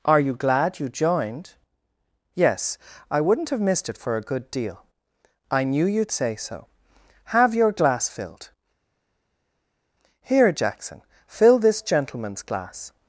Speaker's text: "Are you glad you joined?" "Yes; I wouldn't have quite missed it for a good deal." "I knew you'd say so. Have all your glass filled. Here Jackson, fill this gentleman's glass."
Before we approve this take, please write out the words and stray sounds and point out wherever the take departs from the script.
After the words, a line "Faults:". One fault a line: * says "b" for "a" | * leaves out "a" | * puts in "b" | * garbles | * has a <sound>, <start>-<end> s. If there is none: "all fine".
"Are you glad you joined?" "Yes; I wouldn't have missed it for a good deal." "I knew you'd say so. Have your glass filled. Here Jackson, fill this gentleman's glass."
Faults:
* leaves out "quite"
* leaves out "all"